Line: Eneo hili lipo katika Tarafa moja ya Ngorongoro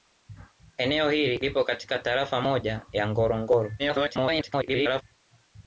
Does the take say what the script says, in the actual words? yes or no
no